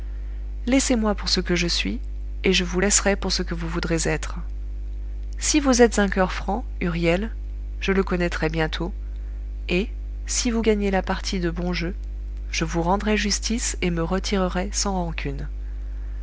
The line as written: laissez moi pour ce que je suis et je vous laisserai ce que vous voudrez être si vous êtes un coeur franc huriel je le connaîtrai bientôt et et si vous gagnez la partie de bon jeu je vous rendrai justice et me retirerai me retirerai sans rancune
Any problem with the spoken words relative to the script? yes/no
yes